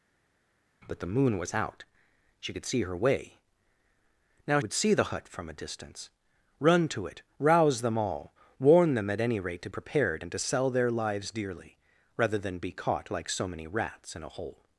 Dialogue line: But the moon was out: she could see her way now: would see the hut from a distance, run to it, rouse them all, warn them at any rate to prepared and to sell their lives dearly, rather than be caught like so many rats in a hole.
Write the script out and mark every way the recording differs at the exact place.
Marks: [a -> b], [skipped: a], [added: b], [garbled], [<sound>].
But the moon was out: she could see her way now: would see the hut from a distance, run to it, rouse them all, warn them at any rate to prepared and to sell their lives dearly, rather than be caught like so many rats in a hole.